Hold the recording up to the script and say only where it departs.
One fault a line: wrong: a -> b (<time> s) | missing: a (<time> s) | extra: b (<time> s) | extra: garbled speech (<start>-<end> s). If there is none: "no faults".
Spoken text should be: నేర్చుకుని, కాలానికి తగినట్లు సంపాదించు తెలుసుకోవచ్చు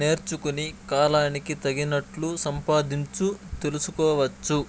no faults